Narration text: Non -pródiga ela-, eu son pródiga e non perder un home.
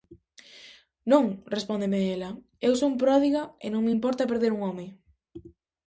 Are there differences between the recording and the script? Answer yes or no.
yes